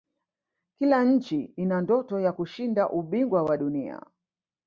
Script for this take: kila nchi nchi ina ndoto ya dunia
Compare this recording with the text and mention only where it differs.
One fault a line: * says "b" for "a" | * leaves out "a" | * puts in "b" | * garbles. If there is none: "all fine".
* leaves out "nchi"
* puts in "kushinda ubingwa wa"